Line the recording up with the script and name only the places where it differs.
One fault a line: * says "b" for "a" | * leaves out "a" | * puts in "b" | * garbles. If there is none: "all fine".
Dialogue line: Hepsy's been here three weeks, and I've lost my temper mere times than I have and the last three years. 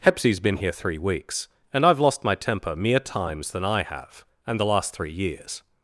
all fine